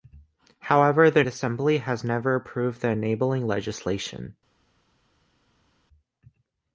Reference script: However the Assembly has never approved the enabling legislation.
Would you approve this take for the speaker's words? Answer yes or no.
yes